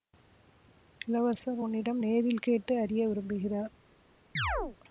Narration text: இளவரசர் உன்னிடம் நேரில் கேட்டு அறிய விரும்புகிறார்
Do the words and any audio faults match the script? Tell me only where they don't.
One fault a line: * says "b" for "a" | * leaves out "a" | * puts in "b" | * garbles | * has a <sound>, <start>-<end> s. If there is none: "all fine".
* has a chirp, 4.4-4.8 s